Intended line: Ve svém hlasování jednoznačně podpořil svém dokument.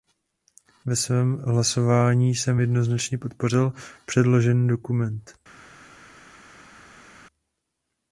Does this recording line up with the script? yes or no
no